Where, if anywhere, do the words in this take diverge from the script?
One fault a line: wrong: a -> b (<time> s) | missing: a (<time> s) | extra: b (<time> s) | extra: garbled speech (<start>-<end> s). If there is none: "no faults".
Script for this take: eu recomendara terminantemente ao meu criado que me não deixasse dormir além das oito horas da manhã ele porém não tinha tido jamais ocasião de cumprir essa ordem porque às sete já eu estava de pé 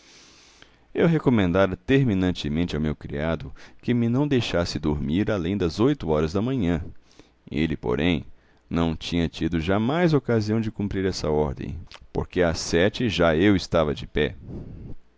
no faults